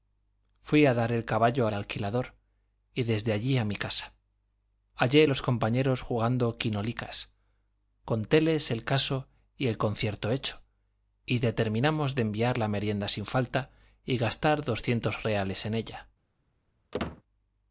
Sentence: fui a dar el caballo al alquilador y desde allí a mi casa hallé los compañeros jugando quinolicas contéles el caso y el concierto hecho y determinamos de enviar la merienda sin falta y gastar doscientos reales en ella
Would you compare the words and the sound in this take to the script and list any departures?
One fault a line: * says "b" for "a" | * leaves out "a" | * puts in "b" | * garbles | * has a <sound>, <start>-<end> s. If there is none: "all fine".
* has a squeak, 16.9-17.2 s